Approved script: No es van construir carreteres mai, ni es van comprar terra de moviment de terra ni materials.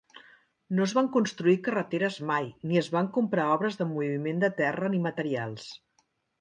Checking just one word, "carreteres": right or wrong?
right